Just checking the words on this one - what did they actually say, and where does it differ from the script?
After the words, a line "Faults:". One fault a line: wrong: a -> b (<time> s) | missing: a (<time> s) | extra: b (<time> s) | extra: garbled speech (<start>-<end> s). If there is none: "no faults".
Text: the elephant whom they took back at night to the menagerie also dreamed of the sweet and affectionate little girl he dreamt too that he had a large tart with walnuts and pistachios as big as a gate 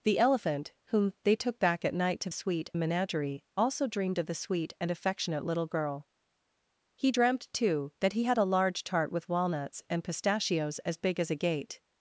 the elephant whom they took back at night to sweet menagerie also dreamed of the sweet and affectionate little girl he dreamt too that he had a large tart with walnuts and pistachios as big as a gate
Faults:
wrong: the -> sweet (2.3 s)